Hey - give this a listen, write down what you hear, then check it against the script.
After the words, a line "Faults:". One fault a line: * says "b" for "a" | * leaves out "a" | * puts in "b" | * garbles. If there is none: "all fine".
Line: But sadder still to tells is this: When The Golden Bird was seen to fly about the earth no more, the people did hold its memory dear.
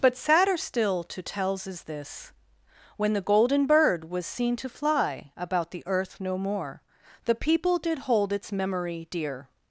But sadder still to tells is this: When The Golden Bird was seen to fly about the earth no more, the people did hold its memory dear.
Faults:
all fine